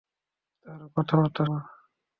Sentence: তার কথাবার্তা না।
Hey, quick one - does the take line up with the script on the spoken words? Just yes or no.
yes